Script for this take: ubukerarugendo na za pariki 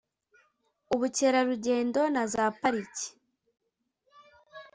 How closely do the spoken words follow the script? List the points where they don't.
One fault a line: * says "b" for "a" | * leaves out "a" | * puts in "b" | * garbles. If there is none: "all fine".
all fine